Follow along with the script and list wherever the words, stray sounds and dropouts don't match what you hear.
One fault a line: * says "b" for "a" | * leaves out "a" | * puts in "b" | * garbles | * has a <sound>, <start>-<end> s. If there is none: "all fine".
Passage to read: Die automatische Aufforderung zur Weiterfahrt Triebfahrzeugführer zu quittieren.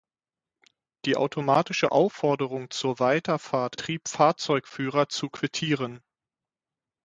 all fine